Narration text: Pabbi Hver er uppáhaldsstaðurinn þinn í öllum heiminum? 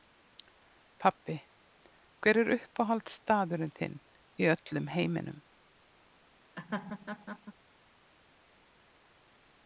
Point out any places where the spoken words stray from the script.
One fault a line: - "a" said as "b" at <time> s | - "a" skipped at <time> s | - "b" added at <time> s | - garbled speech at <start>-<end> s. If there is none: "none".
none